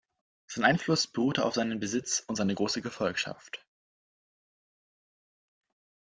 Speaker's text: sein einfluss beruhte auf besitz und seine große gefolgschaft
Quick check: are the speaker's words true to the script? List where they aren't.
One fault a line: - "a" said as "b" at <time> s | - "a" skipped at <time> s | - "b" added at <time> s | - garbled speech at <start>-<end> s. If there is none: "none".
- "seinen" added at 1.5 s